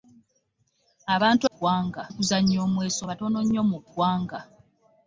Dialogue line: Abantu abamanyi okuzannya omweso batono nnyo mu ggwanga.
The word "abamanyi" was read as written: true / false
false